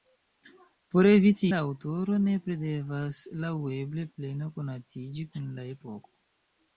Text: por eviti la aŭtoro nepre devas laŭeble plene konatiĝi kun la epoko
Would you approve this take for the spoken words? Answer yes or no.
yes